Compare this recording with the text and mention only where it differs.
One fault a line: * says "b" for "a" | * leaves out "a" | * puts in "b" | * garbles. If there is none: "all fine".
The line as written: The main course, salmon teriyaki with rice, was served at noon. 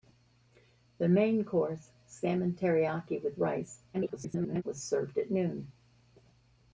* garbles